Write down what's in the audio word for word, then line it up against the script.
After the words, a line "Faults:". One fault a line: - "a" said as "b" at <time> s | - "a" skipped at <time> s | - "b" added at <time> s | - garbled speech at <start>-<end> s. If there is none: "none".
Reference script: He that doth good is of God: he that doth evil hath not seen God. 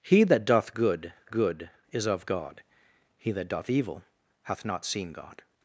He that doth good good is of God: he that doth evil hath not seen God.
Faults:
- "good" added at 1.3 s